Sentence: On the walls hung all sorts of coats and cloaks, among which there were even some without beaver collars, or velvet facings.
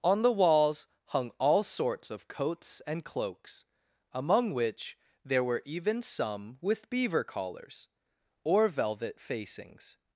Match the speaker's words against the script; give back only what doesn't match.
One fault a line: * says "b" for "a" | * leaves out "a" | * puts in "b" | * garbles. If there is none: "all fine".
* says "with" for "without"